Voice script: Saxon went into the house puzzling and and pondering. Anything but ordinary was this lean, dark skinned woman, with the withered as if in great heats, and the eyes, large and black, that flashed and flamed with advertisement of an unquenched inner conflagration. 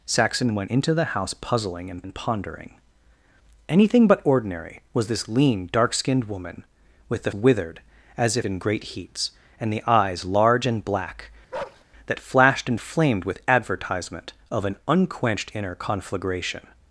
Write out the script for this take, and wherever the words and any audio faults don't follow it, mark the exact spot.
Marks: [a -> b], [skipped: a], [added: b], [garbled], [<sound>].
Saxon went into the house puzzling and and pondering. Anything but ordinary was this lean, dark skinned woman, with the withered as if in great heats, and the eyes, large and black, [bark] that flashed and flamed with advertisement of an unquenched inner conflagration.